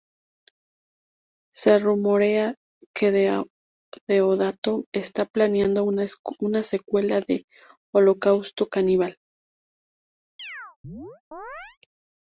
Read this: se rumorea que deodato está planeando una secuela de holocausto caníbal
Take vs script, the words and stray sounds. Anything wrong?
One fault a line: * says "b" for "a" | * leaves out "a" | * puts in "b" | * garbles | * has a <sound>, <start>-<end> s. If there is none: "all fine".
* has a chirp, 10.4-11.8 s